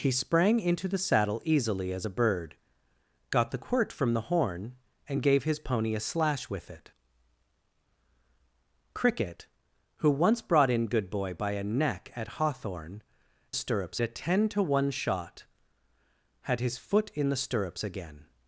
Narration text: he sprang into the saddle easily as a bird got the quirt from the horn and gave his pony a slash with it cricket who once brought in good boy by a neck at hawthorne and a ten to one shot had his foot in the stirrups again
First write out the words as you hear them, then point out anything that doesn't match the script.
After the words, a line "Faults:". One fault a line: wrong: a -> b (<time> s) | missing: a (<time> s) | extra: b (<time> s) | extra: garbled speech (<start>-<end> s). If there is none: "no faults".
he sprang into the saddle easily as a bird got the quirt from the horn and gave his pony a slash with it cricket who once brought in good boy by a neck at hawthorne stirrups a ten to one shot had his foot in the stirrups again
Faults:
wrong: and -> stirrups (13.5 s)